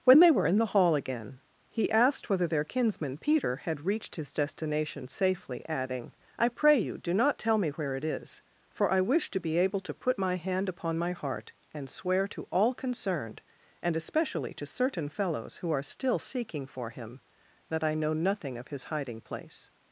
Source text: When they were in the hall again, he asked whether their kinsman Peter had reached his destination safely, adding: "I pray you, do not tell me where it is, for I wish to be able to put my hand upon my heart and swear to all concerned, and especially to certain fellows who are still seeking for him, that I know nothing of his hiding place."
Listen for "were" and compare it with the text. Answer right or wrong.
right